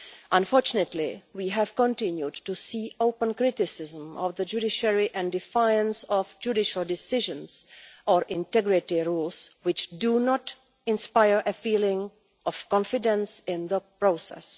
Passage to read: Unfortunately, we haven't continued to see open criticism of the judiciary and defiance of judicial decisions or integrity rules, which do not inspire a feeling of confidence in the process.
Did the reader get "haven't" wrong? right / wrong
wrong